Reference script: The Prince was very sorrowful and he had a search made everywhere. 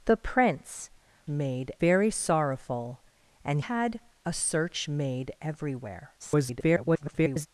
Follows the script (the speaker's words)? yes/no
no